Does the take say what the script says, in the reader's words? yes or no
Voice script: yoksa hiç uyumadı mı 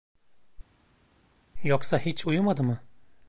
yes